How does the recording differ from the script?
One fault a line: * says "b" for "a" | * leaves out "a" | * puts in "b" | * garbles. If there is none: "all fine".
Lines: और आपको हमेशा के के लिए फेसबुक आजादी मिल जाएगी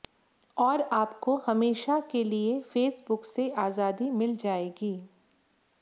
* leaves out "के"
* puts in "से"